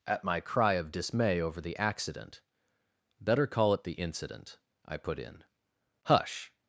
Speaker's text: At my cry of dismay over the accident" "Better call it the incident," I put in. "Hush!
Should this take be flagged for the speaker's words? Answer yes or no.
no